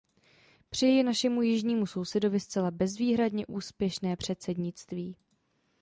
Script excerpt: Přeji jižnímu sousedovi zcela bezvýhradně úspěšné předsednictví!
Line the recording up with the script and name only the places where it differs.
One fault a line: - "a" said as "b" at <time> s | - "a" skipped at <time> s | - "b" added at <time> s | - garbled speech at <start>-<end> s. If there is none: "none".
- "našemu" added at 1.0 s